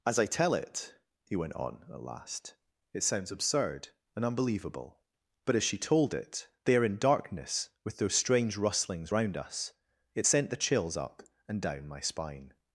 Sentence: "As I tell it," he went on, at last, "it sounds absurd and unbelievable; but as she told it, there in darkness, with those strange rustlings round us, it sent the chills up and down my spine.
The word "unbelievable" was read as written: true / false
true